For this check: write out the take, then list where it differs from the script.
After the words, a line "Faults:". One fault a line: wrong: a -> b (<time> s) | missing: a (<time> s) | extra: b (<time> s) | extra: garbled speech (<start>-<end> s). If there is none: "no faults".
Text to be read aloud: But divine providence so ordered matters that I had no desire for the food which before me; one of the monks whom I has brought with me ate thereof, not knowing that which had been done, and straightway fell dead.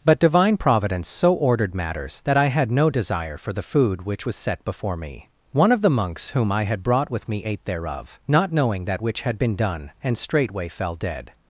But divine providence so ordered matters that I had no desire for the food which was set before me; one of the monks whom I had brought with me ate thereof, not knowing that which had been done, and straightway fell dead.
Faults:
extra: was set (4.2 s)
wrong: has -> had (6.6 s)